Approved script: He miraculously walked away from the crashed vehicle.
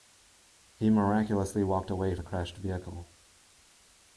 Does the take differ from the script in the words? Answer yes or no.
yes